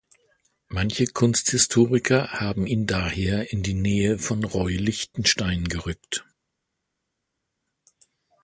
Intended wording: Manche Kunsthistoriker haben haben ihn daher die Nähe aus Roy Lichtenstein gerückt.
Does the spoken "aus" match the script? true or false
false